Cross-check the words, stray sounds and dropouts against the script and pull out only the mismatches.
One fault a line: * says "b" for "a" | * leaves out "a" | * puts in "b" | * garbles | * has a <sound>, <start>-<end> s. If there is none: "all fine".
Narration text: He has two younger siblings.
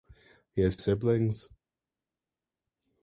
* leaves out "two younger"